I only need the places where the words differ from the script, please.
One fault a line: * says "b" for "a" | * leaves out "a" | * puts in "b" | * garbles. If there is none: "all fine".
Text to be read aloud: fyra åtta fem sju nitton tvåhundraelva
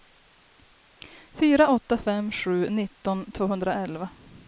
all fine